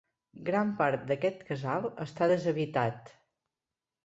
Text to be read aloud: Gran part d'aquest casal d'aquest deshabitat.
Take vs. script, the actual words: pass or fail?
fail